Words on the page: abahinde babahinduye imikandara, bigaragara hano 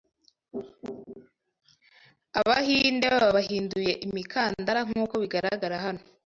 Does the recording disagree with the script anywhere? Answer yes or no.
yes